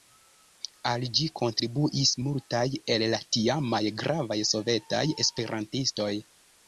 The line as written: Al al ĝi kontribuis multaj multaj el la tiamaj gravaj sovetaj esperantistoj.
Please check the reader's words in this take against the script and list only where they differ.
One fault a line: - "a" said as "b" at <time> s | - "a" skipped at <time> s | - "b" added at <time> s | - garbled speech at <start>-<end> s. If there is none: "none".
- "al" skipped at 1.0 s
- "multaj" skipped at 2.6 s